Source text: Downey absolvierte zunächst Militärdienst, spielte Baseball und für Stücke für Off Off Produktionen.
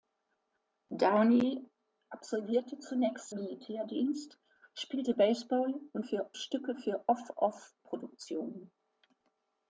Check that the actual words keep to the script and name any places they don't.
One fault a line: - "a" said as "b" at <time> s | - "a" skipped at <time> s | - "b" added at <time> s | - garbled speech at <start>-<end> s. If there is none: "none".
none